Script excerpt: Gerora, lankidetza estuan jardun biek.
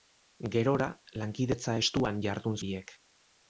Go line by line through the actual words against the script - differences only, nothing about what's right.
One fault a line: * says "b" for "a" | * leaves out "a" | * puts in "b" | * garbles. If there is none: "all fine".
all fine